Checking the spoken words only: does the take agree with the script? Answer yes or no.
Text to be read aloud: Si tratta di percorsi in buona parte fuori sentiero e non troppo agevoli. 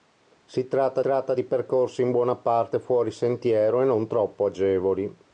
no